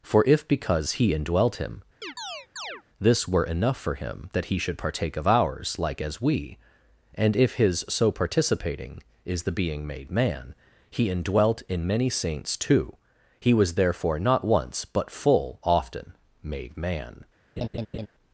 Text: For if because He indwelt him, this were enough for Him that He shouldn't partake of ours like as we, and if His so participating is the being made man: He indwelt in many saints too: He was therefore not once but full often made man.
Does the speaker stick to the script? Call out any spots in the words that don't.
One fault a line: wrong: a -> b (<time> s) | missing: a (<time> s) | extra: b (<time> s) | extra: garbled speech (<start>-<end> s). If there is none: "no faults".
wrong: shouldn't -> should (4.6 s)